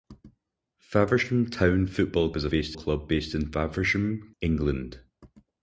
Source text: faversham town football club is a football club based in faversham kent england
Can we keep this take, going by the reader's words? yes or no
no